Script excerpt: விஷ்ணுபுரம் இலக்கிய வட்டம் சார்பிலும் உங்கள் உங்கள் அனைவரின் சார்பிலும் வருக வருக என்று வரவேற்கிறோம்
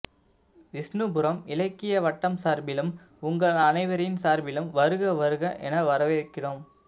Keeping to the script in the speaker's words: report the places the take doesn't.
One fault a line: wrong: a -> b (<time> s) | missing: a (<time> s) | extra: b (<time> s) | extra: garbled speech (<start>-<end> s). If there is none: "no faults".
missing: உங்கள் (3.6 s)
wrong: என்று -> என (5.6 s)